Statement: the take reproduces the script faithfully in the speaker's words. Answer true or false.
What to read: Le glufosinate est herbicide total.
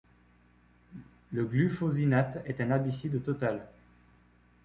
false